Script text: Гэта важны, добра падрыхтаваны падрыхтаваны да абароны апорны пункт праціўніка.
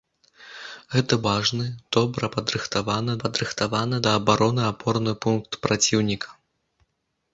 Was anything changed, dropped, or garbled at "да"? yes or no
no